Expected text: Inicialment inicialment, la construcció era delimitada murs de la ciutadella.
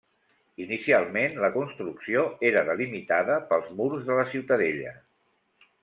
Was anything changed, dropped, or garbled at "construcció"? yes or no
no